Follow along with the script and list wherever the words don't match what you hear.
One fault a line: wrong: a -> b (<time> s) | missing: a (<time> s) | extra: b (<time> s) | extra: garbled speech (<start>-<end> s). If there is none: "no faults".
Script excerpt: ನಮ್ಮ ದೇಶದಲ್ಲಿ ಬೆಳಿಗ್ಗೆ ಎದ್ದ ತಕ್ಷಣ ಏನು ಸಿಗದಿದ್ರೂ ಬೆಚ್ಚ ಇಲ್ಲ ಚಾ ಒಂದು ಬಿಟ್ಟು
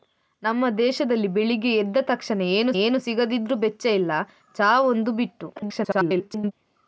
extra: ಏನು (2.8 s)
extra: garbled speech (5.6-6.5 s)